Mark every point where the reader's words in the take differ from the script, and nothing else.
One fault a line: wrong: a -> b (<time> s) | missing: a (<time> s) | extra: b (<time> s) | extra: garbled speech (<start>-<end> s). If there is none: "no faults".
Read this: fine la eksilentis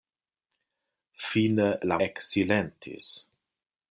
no faults